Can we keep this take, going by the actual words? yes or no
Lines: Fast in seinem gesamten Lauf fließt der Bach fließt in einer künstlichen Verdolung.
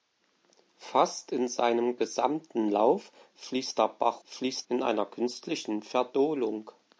yes